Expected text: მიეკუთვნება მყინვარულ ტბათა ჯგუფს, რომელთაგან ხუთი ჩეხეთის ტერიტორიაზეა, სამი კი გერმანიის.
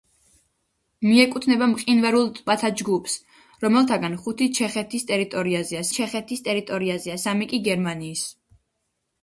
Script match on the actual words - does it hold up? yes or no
no